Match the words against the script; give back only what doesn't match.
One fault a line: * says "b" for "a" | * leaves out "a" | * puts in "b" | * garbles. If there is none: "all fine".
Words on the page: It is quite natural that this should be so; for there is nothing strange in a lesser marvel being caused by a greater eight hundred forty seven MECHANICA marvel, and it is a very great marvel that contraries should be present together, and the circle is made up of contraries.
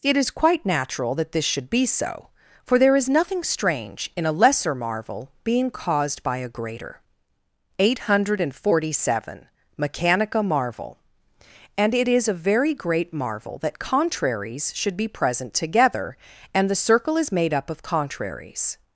all fine